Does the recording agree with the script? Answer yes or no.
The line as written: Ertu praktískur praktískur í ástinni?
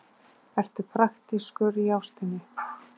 no